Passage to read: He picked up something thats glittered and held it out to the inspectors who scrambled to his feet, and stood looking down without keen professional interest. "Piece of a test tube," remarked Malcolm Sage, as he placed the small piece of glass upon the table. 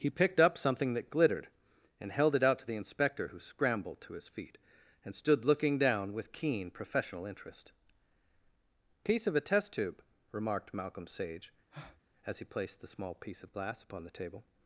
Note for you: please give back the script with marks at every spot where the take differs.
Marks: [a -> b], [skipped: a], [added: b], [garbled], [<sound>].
He picked up something [thats -> that] glittered and held it out to the [inspectors -> inspector] who scrambled to his feet, and stood looking down [without -> with] keen professional interest. "Piece of a test tube," remarked Malcolm Sage, [breath] as he placed the small piece of glass upon the table.